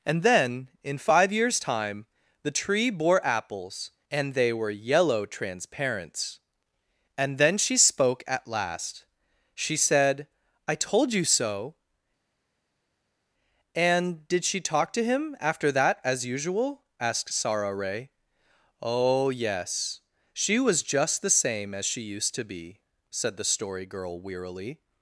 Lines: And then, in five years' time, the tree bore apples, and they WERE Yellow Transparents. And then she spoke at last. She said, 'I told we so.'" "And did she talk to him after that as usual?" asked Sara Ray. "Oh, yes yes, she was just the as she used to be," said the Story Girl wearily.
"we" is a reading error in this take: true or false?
true